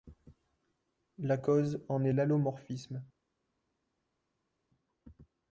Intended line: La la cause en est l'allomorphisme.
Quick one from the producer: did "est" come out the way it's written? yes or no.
yes